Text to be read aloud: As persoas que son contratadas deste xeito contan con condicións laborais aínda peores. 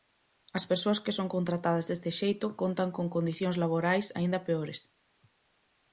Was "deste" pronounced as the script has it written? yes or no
yes